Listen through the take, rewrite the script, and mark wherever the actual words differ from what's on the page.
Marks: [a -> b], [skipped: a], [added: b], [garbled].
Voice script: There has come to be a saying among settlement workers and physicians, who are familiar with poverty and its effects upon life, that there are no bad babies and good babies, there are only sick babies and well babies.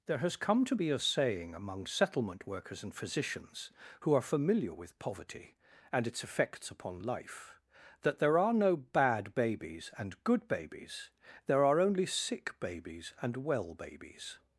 There has come to be a saying among settlement workers and physicians, who are familiar with poverty and its effects upon life, that there are no bad babies and good babies, there are only sick babies and well babies.